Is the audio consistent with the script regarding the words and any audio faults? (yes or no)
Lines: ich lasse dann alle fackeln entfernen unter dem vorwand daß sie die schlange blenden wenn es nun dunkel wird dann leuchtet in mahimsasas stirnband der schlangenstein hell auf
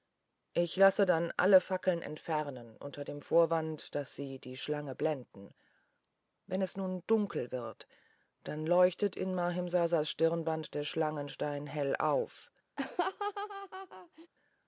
no